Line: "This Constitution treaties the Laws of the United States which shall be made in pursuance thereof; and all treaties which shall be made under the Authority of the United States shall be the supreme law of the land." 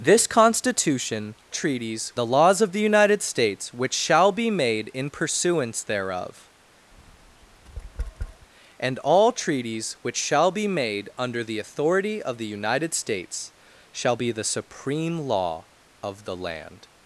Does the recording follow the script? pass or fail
pass